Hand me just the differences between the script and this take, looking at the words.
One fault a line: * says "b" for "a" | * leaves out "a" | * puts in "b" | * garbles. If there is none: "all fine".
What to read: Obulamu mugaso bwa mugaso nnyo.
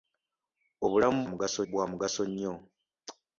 all fine